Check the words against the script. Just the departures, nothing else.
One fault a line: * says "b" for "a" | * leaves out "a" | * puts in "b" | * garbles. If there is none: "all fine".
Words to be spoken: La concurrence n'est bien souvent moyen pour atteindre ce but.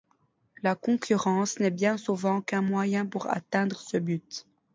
* puts in "qu'un"